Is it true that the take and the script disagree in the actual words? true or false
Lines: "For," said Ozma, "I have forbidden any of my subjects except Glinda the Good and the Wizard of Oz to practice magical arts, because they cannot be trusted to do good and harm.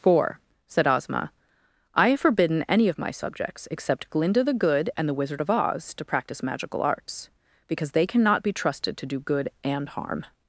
false